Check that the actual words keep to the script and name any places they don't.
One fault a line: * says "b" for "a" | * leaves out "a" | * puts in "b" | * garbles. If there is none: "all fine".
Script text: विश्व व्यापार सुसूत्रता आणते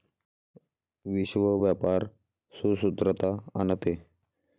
all fine